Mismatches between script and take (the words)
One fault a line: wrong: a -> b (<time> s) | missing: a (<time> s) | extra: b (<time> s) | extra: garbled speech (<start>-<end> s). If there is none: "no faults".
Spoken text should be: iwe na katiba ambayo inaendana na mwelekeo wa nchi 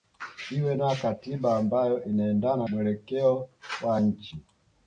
missing: na (2.7 s)